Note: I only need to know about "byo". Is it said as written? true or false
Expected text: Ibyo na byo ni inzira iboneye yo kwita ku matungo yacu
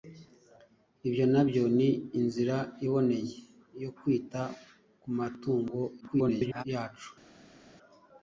true